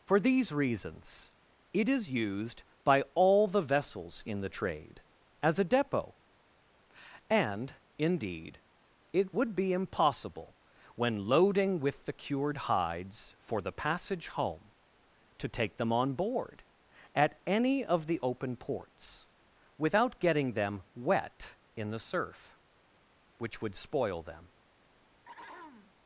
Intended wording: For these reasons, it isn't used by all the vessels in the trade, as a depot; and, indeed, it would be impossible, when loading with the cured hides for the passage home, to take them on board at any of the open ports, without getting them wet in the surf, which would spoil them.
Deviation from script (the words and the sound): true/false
true